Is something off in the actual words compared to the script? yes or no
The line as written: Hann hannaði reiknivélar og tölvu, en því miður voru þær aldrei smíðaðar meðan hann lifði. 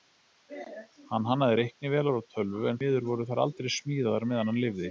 yes